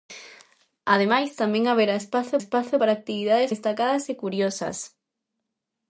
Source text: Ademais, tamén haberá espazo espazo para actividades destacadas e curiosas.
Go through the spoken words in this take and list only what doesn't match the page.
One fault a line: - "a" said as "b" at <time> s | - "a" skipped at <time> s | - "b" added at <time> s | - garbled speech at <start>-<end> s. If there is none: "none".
none